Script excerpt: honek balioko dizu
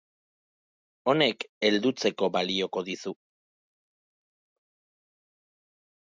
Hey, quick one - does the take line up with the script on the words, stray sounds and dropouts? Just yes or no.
no